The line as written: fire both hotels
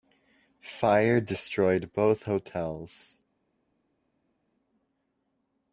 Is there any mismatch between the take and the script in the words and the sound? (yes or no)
yes